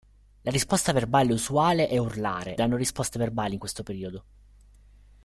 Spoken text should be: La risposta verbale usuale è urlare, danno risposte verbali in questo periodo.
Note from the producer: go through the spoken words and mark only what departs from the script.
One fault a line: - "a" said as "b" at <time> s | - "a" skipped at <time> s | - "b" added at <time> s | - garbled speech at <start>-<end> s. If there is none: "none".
none